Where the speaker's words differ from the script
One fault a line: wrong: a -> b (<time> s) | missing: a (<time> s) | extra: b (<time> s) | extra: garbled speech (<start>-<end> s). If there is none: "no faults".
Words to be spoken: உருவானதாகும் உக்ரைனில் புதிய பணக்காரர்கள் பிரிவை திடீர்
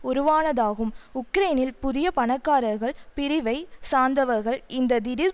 extra: சார்ந்தவர்கள் இந்த (3.9 s)